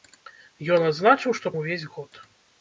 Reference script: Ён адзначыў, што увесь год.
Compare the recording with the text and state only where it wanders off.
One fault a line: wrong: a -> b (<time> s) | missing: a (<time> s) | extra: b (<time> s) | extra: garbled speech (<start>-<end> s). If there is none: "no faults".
no faults